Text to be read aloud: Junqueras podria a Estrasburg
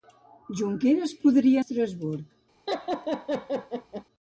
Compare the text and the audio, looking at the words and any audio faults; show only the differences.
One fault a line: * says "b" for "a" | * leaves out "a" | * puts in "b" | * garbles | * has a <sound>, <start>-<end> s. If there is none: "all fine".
* has a laugh, 2.7-4.0 s